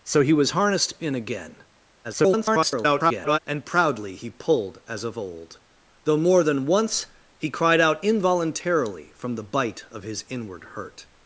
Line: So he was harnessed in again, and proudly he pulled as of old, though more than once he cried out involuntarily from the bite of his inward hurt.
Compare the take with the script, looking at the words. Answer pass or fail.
fail